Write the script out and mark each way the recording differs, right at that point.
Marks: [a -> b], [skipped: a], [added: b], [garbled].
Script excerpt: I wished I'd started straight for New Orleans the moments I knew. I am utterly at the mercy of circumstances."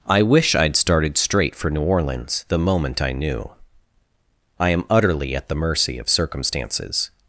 I [wished -> wish] I'd started straight for New Orleans the [moments -> moment] I knew. I am utterly at the mercy of circumstances."